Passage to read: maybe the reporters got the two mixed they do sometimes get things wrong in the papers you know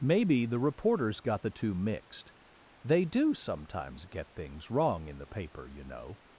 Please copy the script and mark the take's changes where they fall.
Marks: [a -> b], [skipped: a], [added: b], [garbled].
maybe the reporters got the two mixed they do sometimes get things wrong in the [papers -> paper] you know